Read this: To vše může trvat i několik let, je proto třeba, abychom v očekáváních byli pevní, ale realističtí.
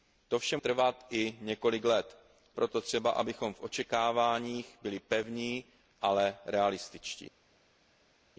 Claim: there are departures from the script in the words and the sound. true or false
true